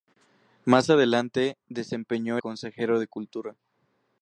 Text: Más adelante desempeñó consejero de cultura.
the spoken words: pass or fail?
pass